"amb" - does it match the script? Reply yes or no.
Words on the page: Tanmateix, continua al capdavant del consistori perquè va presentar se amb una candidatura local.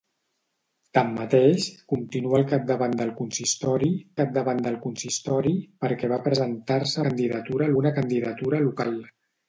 no